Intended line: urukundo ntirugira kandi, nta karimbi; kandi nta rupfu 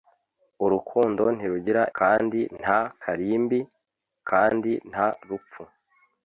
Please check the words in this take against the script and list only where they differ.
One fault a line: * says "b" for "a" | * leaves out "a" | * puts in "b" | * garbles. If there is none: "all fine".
all fine